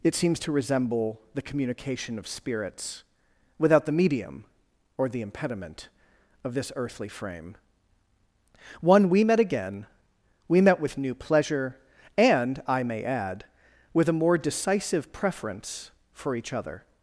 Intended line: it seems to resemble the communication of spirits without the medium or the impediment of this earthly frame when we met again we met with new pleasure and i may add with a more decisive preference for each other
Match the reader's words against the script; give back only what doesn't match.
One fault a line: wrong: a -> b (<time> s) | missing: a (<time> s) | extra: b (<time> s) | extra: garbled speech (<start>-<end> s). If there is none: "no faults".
wrong: when -> one (8.8 s)